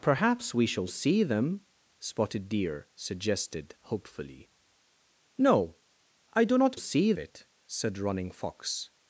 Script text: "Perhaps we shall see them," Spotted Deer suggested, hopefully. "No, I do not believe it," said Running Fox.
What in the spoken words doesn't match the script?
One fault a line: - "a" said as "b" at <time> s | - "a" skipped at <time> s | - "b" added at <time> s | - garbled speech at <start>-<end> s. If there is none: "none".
- "believe" said as "see" at 6.8 s